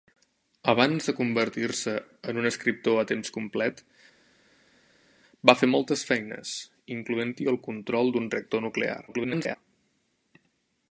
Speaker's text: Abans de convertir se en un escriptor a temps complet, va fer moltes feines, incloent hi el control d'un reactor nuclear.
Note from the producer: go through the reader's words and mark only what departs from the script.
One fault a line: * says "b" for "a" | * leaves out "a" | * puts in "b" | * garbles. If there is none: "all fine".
* garbles